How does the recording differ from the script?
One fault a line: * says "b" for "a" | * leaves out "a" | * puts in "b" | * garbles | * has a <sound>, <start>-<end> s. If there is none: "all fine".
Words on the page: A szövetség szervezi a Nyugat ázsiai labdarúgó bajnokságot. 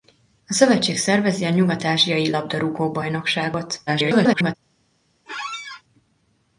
* garbles
* has a squeak, 5.3-5.8 s